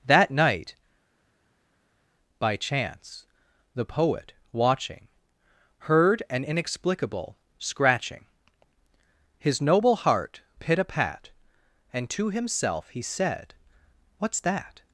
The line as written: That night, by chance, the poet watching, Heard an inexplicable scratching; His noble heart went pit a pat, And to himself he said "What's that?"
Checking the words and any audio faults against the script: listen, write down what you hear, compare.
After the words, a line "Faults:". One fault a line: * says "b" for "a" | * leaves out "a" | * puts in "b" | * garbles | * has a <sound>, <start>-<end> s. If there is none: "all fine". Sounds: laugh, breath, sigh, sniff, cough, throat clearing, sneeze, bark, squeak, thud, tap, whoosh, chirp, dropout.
That night, by chance, the poet watching, Heard an inexplicable scratching; His noble heart pit a pat, And to himself he said "What's that?"
Faults:
* leaves out "went"